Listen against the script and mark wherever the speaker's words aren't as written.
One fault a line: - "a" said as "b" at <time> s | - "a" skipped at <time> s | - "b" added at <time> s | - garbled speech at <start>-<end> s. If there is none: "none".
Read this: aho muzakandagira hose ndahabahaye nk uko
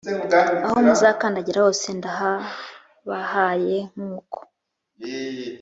none